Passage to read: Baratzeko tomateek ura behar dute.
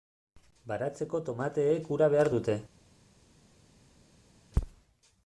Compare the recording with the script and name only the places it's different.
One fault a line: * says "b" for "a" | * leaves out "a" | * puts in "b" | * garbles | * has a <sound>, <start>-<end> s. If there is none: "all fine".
all fine